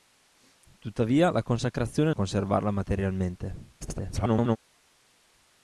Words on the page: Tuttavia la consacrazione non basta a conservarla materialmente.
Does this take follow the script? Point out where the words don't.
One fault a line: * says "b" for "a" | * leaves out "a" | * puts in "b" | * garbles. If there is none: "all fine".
* leaves out "non basta"
* garbles